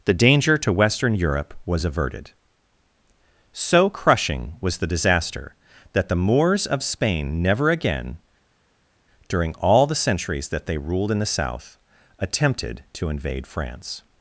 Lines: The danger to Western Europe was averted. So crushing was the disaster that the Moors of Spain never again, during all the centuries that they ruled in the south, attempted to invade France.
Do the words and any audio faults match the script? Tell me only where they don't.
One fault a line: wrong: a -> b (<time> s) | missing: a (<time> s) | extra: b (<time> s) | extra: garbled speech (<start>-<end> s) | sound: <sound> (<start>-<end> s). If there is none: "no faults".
no faults